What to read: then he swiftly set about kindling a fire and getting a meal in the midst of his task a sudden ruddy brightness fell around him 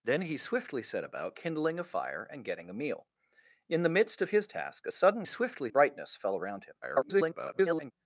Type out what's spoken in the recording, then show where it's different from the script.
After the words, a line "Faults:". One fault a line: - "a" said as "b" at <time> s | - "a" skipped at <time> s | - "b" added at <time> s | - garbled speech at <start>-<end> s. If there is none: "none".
then he swiftly set about kindling a fire and getting a meal in the midst of his task a sudden swiftly brightness fell around him [garbled]
Faults:
- "ruddy" said as "swiftly" at 5.2 s
- garbled speech at 6.8-7.9 s